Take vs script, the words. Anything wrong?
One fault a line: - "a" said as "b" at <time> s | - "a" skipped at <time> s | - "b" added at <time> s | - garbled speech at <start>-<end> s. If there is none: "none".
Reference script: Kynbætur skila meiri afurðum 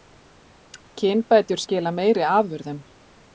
none